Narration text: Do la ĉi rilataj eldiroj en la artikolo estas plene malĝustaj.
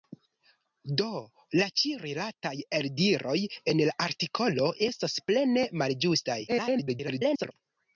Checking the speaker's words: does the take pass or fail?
fail